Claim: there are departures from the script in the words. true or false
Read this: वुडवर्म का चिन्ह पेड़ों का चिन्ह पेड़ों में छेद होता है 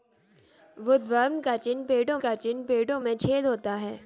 false